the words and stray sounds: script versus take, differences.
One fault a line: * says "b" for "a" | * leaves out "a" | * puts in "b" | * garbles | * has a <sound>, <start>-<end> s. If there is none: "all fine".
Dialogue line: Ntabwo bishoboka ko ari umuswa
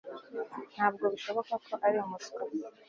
all fine